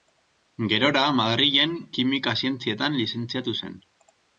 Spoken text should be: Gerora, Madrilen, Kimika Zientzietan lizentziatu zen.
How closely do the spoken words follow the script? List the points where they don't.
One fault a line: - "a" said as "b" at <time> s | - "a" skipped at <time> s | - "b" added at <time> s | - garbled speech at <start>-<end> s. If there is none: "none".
none